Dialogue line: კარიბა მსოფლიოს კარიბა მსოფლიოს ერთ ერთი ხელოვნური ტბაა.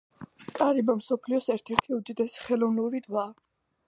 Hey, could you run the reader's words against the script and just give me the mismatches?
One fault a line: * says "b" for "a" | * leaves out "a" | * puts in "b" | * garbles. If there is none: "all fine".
* leaves out "კარიბა მსოფლიოს"
* puts in "უდიდესი"